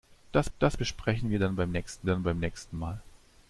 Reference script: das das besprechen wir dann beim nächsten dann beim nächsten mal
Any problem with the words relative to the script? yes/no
no